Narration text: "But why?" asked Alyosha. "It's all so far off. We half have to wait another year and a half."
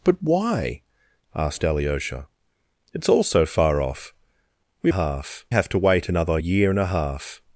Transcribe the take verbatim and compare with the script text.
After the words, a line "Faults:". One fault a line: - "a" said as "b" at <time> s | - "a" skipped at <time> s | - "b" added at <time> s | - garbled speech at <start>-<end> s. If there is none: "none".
"But why?" asked Alyosha. "It's all so far off. We half have to wait another year and a half."
Faults:
none